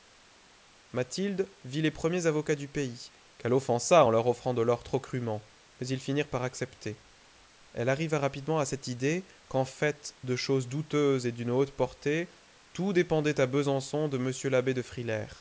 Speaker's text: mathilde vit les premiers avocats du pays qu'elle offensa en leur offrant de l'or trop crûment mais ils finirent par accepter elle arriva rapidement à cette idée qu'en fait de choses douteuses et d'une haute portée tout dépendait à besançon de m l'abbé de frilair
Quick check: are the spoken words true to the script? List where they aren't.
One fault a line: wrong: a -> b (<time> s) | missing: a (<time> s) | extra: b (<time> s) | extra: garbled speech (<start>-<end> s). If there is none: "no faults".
no faults